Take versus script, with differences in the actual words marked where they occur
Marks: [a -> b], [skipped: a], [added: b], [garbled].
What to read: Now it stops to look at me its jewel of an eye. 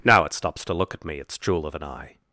Now it stops to look at me its jewel of an eye.